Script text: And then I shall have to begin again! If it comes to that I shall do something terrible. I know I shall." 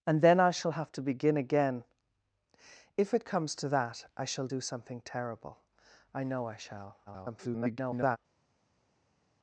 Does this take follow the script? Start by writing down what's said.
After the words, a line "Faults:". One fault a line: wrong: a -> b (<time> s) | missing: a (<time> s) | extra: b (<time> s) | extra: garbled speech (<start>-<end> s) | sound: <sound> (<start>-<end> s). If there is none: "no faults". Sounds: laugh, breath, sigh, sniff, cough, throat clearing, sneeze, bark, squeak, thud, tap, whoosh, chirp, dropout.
And then I shall have to begin again! If it comes to that I shall do something terrible. I know I shall." [garbled]
Faults:
extra: garbled speech (7.1-8.2 s)